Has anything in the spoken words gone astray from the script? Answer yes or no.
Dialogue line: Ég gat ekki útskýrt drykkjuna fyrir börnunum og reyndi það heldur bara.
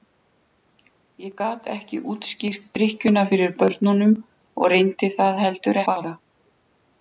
no